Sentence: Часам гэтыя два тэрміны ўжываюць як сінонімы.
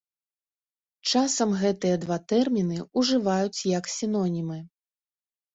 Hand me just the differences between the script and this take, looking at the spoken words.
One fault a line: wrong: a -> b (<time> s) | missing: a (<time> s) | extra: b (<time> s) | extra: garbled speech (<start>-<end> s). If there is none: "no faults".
no faults